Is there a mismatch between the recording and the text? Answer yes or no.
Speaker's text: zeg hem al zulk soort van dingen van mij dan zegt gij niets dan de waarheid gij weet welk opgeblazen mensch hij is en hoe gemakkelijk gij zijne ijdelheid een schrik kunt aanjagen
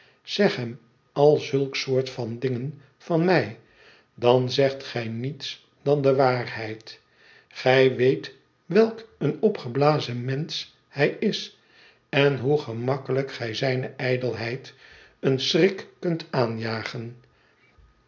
yes